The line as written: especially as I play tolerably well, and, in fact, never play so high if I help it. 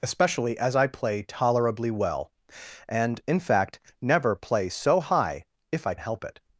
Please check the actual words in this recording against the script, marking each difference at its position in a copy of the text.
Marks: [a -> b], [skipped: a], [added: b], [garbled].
especially as I play tolerably well, and, in fact, never play so high if I help it.